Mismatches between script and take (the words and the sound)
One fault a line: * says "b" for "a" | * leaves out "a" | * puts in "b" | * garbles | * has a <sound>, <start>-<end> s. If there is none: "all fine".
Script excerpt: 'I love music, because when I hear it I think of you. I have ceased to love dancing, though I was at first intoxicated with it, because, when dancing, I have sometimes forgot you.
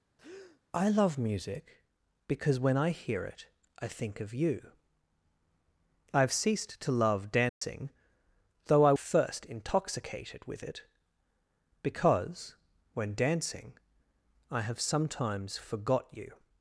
* has a breath, 0.2-0.6 s
* has a dropout, 7.5-7.6 s
* leaves out "was at"